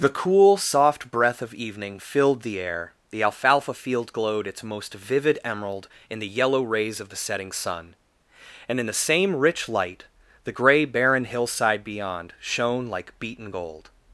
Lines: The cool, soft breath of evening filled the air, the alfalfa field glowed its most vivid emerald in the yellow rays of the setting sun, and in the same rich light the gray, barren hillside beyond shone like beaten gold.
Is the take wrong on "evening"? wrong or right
right